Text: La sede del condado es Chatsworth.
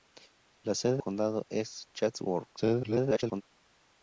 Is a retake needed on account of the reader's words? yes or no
yes